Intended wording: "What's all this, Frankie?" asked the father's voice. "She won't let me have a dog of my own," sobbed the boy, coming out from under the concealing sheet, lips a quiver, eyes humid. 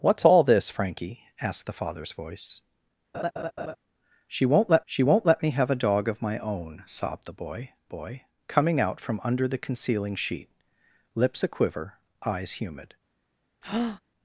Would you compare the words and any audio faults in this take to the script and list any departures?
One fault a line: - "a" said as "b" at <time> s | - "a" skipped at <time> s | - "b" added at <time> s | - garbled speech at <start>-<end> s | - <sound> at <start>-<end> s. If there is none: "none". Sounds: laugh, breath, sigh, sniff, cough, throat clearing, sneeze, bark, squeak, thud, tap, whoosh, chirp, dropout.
- laugh at 3.1-3.8 s
- "she won't let" added at 4.9 s
- "boy" added at 7.9 s
- breath at 13.6-14.0 s